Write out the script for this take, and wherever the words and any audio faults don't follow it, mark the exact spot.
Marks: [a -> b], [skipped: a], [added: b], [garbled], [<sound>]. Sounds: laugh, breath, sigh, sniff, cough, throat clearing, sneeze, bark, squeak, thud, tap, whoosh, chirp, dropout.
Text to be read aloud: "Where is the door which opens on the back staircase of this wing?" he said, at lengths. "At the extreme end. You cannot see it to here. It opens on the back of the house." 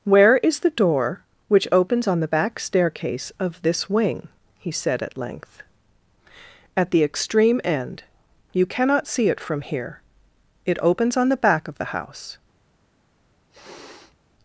"Where is the door which opens on the back staircase of this wing?" he said, at [lengths. -> length] "At the extreme end. You cannot see it [to -> from] here. It opens on the back of the house." [sniff]